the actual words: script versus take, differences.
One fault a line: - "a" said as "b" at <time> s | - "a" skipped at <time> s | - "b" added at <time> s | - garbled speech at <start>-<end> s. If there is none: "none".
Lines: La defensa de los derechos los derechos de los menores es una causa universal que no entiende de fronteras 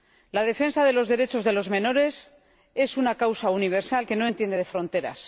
- "los derechos" skipped at 1.4 s